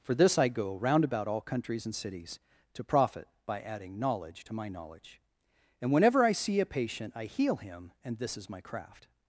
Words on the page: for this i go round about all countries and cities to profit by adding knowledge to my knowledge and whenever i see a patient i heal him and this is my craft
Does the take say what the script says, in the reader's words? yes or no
yes